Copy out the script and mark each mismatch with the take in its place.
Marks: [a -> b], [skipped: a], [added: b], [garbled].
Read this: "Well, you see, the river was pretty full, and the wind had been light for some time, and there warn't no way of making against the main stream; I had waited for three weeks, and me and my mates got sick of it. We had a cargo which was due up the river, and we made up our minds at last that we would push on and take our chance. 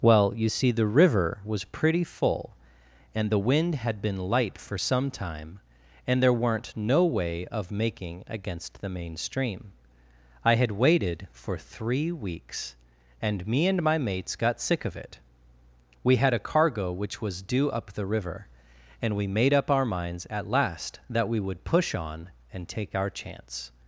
"Well, you see, the river was pretty full, and the wind had been light for some time, and there [warn't -> weren't] no way of making against the main stream; I had waited for three weeks, and me and my mates got sick of it. We had a cargo which was due up the river, and we made up our minds at last that we would push on and take our chance.